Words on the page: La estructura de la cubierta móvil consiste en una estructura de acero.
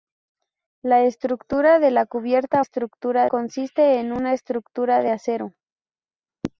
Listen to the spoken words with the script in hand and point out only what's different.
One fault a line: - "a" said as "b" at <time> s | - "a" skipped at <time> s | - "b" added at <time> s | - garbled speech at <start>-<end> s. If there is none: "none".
- "móvil" said as "estructura" at 2.6 s